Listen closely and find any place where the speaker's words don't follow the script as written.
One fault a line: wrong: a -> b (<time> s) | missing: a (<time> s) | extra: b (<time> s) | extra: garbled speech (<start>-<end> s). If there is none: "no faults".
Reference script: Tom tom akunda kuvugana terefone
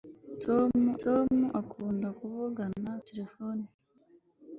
no faults